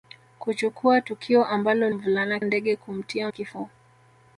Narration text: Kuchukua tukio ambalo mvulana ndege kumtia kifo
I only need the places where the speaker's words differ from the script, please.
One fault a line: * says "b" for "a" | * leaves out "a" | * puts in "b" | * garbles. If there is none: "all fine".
all fine